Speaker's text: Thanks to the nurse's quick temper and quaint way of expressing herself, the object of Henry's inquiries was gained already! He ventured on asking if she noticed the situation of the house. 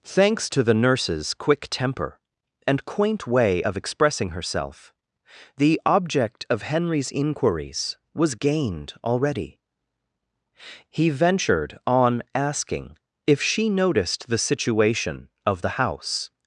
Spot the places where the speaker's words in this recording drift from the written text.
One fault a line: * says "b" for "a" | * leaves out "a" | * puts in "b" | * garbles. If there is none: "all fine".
all fine